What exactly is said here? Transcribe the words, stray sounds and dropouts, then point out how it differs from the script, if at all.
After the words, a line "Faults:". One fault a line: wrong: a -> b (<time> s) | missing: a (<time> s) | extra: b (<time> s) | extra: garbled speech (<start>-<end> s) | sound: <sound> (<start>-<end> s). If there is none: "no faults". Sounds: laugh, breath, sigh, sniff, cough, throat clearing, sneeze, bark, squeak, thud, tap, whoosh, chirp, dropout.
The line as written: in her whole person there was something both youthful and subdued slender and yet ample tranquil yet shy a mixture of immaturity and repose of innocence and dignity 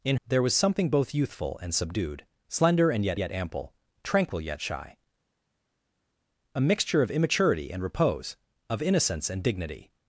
in there was something both youthful and subdued slender and yet yet ample tranquil yet shy a mixture of immaturity and repose of innocence and dignity
Faults:
missing: her whole person (0.2 s)
extra: yet (3.2 s)